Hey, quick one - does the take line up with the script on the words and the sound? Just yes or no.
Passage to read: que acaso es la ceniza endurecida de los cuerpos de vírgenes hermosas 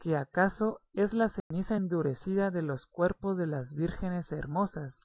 no